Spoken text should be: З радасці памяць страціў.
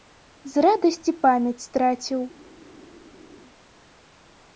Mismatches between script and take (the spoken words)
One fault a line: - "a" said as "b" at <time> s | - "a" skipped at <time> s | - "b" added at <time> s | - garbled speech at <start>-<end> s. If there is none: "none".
none